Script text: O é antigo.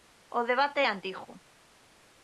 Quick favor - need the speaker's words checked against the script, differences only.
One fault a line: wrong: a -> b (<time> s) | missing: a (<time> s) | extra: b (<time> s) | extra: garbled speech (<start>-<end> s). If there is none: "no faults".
extra: debate (0.5 s)